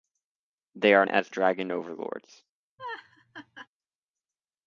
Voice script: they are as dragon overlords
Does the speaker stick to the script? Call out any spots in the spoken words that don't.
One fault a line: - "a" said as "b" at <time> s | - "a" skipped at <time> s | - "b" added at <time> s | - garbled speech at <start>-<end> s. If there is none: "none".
none